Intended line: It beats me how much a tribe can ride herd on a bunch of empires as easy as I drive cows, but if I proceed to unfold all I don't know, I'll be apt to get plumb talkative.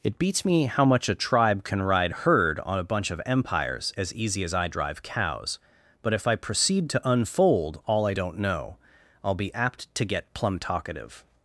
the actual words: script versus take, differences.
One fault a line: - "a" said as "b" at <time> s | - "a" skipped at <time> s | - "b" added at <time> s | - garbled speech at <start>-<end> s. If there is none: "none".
none